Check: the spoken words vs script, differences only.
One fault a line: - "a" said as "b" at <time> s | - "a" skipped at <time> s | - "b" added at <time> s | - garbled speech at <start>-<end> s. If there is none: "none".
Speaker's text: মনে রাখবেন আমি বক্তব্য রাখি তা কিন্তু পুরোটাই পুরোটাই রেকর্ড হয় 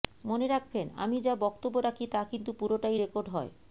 - "যা" added at 1.2 s
- "পুরোটাই" skipped at 3.0 s